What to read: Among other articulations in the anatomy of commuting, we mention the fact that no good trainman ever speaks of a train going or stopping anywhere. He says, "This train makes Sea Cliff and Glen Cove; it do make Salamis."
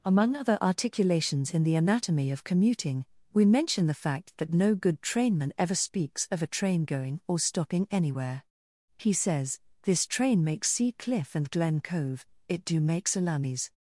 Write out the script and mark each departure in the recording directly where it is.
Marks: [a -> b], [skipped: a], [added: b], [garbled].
Among other articulations in the anatomy of commuting, we mention the fact that no good trainman ever speaks of a train going or stopping anywhere. He says, "This train makes Sea Cliff and Glen Cove; it do make Salamis."